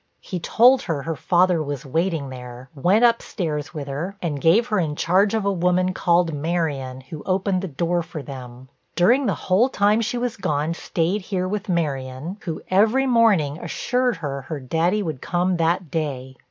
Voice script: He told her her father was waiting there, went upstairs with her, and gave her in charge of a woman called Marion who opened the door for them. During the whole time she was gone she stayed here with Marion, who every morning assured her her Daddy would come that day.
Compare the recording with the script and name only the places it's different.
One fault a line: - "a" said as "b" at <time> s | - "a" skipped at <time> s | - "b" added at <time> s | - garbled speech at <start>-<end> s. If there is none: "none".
- "she" skipped at 10.7 s